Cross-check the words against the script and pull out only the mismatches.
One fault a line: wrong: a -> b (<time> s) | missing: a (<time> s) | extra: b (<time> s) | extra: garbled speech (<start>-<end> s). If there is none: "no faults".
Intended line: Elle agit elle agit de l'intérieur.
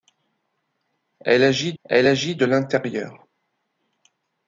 no faults